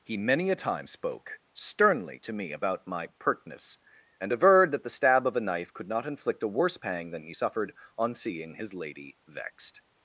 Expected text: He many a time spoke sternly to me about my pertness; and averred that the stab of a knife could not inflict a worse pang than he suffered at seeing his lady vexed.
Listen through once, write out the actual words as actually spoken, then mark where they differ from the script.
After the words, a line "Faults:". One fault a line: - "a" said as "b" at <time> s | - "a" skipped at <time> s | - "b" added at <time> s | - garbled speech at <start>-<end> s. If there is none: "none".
He many a time spoke sternly to me about my pertness; and averred that the stab of a knife could not inflict a worse pang than he suffered on seeing his lady vexed.
Faults:
- "at" said as "on" at 8.0 s